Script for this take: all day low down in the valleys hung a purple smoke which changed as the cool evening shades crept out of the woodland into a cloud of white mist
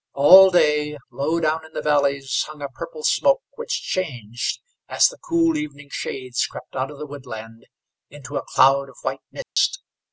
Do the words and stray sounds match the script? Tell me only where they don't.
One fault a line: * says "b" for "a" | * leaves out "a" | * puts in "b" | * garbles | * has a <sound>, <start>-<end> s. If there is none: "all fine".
* has a dropout, 9.4-9.6 s